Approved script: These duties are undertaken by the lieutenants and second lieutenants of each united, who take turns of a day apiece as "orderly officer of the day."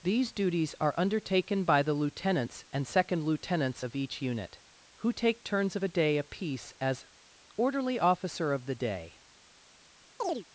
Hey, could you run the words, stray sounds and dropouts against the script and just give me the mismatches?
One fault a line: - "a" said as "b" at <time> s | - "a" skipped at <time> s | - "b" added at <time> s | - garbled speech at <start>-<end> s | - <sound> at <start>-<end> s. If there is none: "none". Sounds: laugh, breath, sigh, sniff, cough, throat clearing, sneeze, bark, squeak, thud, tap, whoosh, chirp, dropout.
- "united" said as "unit" at 4.2 s
- chirp at 10.2-10.4 s